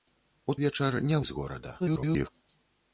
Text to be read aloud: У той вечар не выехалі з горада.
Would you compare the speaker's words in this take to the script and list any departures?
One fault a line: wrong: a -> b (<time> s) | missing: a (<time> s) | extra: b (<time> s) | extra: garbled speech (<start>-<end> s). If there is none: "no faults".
missing: той (0.5 s)
missing: выехалі (1.2 s)
extra: garbled speech (1.8-2.3 s)